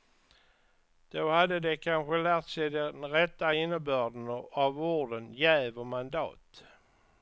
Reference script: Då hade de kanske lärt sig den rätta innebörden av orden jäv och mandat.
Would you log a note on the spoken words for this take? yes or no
no